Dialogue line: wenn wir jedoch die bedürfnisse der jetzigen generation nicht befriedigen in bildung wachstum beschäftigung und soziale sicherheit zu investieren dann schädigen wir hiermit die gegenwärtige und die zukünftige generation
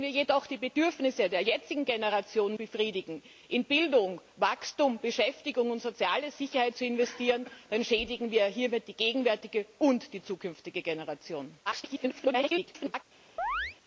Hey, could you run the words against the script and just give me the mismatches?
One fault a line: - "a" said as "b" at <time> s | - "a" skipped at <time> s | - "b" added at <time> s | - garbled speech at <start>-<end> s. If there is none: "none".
- "nicht" skipped at 2.5 s
- garbled speech at 11.7-13.0 s